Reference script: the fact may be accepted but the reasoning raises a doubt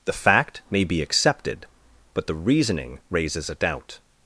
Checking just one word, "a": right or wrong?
right